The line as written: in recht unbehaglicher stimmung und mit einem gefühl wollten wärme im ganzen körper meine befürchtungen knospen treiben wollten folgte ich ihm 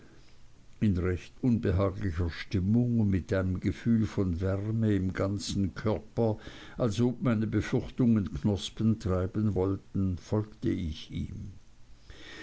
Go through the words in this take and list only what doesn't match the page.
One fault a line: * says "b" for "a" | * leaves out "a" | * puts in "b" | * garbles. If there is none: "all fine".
* says "von" for "wollten"
* puts in "als ob"